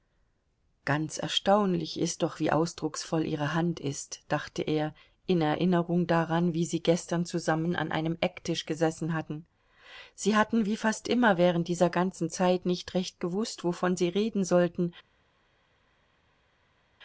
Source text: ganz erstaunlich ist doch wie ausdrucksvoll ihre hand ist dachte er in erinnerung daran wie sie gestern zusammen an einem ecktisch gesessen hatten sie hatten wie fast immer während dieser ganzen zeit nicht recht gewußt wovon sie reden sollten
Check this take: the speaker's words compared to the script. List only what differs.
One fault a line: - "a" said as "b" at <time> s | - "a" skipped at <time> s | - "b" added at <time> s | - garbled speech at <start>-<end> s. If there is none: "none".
none